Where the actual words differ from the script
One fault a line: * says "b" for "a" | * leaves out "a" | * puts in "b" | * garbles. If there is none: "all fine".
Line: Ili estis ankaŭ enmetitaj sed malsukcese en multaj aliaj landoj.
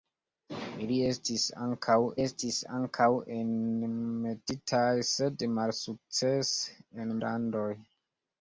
* puts in "estis ankaŭ"
* leaves out "multaj aliaj"